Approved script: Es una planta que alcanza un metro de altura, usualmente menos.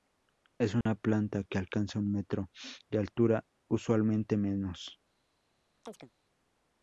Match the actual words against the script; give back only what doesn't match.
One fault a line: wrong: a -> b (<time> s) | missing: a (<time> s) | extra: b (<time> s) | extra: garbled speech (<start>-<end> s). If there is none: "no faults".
no faults